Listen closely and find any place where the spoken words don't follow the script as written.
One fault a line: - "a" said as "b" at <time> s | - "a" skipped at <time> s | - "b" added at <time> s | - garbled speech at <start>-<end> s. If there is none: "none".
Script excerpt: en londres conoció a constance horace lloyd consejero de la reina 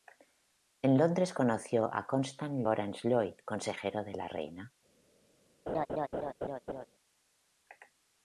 none